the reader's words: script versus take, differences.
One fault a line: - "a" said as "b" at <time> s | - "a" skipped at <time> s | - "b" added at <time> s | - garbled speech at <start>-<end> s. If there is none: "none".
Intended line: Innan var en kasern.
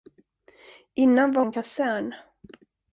none